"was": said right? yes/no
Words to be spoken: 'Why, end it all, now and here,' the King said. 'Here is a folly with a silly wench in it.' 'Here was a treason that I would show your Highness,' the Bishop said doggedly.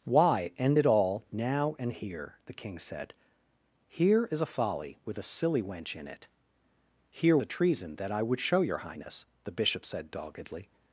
no